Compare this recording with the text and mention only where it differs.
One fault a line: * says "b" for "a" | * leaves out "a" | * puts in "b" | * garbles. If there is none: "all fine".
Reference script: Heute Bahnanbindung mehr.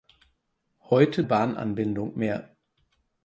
all fine